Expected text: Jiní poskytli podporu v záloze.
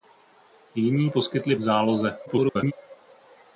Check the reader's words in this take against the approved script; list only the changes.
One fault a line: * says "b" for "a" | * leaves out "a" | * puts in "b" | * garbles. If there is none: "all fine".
* leaves out "podporu"
* garbles